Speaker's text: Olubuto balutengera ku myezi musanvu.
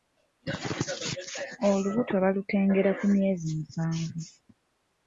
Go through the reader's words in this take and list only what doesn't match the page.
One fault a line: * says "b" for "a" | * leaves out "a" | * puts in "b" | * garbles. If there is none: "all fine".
all fine